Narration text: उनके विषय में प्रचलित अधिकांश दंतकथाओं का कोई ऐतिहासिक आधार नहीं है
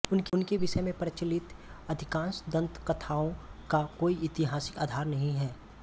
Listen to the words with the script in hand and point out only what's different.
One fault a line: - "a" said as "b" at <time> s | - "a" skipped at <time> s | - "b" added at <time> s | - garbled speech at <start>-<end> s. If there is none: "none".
none